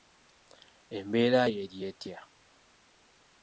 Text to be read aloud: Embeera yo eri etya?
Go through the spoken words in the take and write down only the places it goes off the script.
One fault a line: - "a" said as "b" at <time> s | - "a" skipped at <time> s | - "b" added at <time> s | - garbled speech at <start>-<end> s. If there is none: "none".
none